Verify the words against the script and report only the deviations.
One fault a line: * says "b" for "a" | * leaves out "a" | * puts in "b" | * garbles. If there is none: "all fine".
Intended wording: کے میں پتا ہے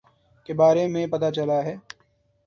* puts in "بارے"
* puts in "چلا"